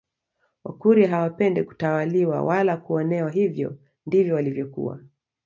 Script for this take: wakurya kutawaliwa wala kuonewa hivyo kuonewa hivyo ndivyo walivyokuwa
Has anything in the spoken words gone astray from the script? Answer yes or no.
yes